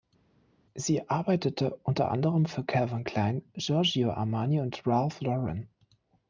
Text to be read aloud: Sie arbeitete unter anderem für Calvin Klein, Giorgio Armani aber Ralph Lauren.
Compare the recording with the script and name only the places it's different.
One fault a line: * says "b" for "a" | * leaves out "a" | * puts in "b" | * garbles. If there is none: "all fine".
* says "und" for "aber"